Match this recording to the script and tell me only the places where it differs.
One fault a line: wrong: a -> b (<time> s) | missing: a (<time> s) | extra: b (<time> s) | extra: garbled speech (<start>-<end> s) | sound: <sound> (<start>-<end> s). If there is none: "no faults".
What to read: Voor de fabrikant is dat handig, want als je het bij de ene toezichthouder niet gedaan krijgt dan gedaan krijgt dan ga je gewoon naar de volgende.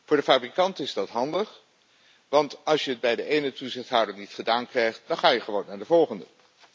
missing: gedaan krijgt dan (5.2 s)